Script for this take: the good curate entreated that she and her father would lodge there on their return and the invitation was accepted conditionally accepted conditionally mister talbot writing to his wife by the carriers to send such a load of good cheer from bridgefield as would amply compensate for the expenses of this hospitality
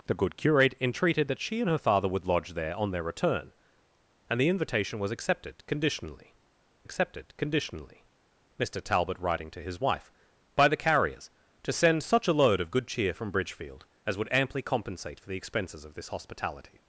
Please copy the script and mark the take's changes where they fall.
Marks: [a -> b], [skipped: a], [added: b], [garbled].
the good curate entreated that she and her father would lodge there on their return and the invitation was accepted conditionally accepted conditionally mister talbot writing to his wife by the carriers to send such a load of good cheer from bridgefield as would amply compensate for the expenses of this hospitality